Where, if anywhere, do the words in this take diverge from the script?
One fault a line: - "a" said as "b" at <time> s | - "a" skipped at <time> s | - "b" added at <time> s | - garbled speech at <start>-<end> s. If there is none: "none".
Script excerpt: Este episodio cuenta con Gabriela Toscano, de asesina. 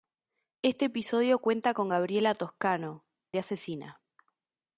none